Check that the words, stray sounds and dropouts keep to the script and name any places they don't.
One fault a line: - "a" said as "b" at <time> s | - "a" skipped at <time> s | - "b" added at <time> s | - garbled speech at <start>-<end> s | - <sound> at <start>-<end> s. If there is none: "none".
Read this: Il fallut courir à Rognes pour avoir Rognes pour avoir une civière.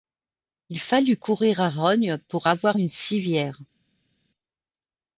- "Rognes pour avoir" skipped at 2.8 s